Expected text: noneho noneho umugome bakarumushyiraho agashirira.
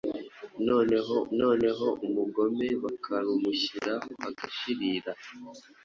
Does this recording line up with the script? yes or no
yes